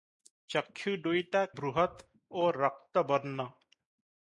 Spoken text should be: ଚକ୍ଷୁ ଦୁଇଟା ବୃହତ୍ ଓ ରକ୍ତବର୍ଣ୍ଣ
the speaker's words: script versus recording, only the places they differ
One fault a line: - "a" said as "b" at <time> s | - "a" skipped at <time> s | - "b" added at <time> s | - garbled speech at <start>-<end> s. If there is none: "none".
none